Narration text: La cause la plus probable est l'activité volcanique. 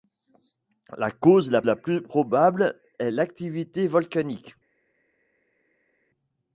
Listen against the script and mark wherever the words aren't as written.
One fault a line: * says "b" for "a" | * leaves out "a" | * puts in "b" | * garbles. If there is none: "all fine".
* puts in "la"